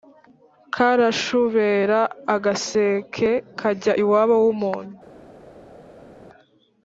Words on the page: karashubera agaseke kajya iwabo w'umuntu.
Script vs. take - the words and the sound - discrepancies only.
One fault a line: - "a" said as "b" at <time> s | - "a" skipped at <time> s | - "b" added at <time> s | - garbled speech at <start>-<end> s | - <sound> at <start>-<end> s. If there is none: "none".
none